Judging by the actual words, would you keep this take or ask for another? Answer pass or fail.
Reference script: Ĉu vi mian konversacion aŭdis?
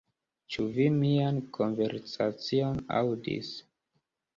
pass